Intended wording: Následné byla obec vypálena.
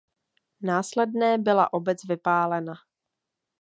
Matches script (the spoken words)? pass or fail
pass